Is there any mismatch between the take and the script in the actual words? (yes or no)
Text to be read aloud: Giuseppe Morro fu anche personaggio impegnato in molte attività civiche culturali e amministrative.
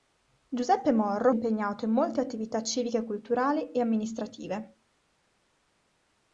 yes